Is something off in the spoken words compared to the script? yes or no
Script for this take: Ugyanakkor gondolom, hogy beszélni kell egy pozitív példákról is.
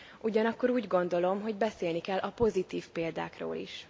yes